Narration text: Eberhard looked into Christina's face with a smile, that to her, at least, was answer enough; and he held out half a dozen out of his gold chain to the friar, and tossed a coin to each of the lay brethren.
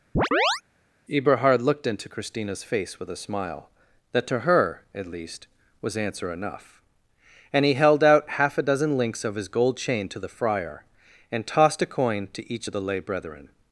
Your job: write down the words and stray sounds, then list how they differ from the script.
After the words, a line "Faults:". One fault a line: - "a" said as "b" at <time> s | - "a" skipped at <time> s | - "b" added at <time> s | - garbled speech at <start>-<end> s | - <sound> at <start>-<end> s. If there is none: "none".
Eberhard looked into Christina's face with a smile, that to her, at least, was answer enough; and he held out half a dozen links of his gold chain to the friar, and tossed a coin to each of the lay brethren.
Faults:
- chirp at 0.2-0.6 s
- "out" said as "links" at 9.0 s